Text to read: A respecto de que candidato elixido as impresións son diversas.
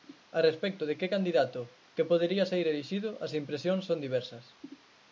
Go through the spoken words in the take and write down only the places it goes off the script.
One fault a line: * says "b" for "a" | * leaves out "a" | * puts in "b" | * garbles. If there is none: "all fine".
* puts in "que podería saír"